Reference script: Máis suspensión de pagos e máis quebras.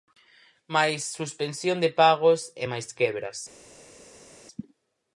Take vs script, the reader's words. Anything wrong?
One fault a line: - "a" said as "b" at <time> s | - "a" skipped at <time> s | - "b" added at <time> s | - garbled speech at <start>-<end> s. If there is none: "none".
none